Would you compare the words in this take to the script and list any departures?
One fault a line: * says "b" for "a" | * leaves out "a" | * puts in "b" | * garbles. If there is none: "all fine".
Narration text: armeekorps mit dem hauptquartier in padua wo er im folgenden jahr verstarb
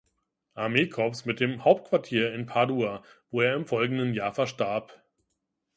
all fine